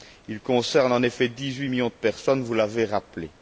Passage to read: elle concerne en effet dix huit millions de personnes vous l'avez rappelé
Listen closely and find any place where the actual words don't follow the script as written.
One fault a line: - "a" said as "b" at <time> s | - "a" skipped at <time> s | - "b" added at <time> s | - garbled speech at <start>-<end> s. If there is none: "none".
- "elle" said as "il" at 0.3 s